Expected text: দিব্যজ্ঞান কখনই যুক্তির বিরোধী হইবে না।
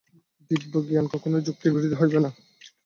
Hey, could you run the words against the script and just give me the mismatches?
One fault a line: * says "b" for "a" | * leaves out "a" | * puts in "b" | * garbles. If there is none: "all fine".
all fine